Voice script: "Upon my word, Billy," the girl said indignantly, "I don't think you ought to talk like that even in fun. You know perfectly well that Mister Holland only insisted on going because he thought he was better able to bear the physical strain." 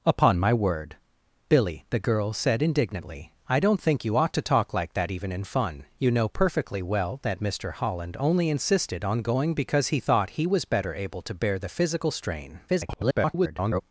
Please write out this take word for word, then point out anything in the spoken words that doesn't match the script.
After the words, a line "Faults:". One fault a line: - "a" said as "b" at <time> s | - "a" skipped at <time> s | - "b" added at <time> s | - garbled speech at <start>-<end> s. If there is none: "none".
"Upon my word, Billy," the girl said indignantly, "I don't think you ought to talk like that even in fun. You know perfectly well that Mister Holland only insisted on going because he thought he was better able to bear the physical strain." [garbled]
Faults:
- garbled speech at 12.7-13.8 s